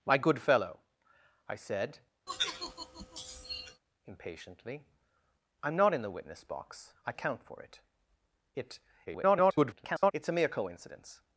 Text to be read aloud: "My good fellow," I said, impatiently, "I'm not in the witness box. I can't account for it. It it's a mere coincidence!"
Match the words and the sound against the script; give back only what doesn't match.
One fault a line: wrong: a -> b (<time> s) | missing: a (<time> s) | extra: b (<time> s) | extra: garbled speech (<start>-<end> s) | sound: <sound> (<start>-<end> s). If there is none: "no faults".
sound: sigh (2.3-3.8 s)
missing: can't (7.1 s)
extra: garbled speech (9.1-10.1 s)